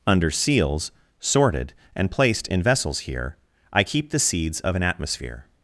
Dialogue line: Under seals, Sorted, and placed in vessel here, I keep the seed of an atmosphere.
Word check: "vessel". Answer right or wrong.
wrong